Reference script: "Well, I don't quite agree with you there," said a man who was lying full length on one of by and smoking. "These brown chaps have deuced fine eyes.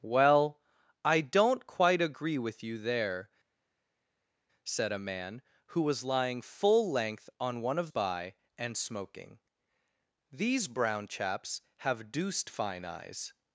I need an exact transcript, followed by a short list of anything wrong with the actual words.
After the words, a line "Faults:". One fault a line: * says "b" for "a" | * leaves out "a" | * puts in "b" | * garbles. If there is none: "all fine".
"Well, I don't quite agree with you there," said a man who was lying full length on one of by and smoking. "These brown chaps have deuced fine eyes.
Faults:
all fine